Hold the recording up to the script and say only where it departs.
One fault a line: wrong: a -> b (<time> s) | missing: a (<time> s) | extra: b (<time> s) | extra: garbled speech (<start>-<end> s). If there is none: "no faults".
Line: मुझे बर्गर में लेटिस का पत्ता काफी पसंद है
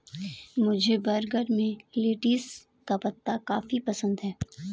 no faults